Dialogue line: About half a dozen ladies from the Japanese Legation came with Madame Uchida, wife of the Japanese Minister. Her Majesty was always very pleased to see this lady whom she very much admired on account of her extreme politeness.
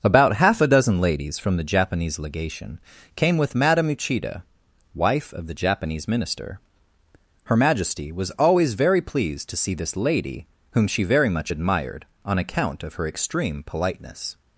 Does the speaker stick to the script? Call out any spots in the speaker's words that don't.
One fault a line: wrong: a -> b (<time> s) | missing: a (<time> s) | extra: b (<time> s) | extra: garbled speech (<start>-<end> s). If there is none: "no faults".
no faults